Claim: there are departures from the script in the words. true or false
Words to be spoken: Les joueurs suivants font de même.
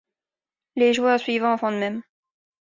false